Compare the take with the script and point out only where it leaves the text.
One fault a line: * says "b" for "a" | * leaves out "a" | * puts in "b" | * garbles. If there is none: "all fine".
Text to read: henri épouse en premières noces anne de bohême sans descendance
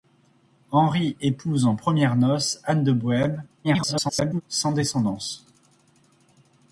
* garbles